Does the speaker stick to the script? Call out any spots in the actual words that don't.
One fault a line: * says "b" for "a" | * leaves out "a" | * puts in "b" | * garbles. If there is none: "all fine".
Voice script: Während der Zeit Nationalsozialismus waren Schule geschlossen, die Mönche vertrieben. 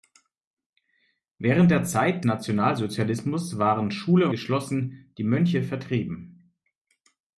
all fine